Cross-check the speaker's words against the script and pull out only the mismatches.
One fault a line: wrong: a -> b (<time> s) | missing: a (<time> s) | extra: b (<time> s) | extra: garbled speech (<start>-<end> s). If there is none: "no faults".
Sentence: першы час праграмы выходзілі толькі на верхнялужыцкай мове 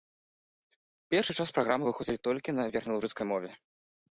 no faults